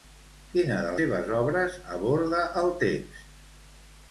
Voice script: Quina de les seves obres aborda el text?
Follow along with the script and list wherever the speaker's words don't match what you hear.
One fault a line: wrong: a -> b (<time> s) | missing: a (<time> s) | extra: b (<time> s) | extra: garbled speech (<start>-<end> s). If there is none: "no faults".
missing: les (0.9 s)